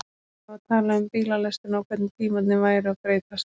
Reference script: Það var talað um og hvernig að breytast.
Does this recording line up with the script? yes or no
no